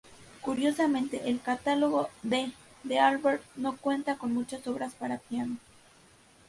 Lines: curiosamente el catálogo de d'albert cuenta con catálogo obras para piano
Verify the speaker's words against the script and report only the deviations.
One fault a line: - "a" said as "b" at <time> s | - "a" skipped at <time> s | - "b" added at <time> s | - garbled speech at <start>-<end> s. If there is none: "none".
- "no" added at 3.5 s
- "catálogo" said as "muchas" at 4.3 s